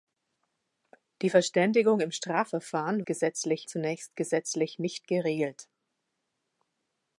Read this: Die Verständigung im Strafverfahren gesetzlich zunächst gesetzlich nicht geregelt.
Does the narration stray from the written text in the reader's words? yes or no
no